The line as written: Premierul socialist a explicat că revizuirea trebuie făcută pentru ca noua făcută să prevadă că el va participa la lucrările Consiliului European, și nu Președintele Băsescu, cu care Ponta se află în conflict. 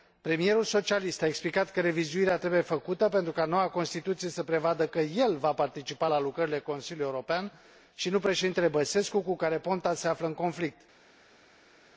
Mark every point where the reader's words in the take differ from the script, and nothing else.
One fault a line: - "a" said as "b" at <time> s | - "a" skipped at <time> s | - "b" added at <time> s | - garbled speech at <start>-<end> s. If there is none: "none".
- "făcută" said as "constituție" at 3.7 s